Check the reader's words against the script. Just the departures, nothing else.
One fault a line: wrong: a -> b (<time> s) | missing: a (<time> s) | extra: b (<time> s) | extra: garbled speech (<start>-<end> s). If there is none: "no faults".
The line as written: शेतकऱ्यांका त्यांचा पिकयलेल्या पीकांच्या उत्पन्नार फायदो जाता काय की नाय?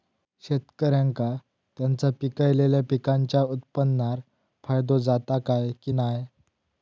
no faults